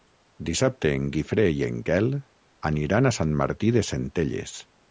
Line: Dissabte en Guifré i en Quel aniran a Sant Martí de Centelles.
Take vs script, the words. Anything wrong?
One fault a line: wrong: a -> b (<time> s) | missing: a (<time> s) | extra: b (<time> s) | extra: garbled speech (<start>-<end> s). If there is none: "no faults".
no faults